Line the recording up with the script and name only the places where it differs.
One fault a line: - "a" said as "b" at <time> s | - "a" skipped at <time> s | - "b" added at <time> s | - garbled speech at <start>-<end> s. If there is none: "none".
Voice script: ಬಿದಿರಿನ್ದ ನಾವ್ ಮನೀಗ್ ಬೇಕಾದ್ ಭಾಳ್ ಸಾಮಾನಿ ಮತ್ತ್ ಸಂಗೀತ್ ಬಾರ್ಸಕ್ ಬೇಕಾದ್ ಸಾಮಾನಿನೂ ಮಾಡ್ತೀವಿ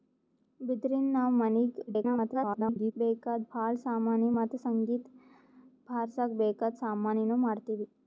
- garbled speech at 1.9-2.9 s